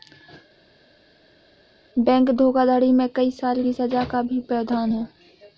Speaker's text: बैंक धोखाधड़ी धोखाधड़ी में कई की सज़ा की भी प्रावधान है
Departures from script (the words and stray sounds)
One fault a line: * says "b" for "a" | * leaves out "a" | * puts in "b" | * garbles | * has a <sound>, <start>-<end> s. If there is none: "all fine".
* leaves out "धोखाधड़ी"
* puts in "साल"
* says "का" for "की"